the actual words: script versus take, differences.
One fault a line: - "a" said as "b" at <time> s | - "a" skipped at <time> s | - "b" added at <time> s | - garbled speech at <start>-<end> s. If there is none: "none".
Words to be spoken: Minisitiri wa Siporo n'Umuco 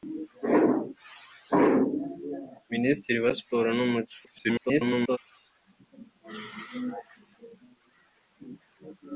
- garbled speech at 4.2-5.2 s